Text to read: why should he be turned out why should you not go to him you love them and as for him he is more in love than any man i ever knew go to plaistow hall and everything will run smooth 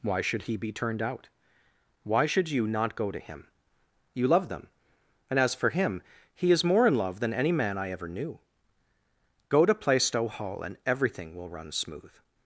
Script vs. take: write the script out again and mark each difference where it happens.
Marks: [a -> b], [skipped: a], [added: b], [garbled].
why should he be turned out why should you not go to him you love them and as for him he is more in love than any man i ever knew go to plaistow hall and everything will run smooth